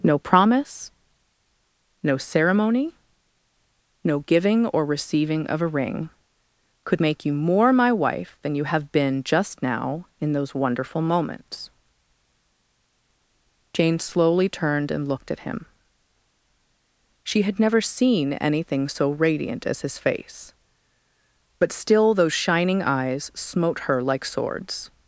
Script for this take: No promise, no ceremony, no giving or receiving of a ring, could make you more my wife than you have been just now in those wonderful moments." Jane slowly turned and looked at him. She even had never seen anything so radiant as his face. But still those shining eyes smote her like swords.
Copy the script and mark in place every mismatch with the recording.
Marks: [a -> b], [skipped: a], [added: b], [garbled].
No promise, no ceremony, no giving or receiving of a ring, could make you more my wife than you have been just now in those wonderful moments." Jane slowly turned and looked at him. She [skipped: even] had never seen anything so radiant as his face. But still those shining eyes smote her like swords.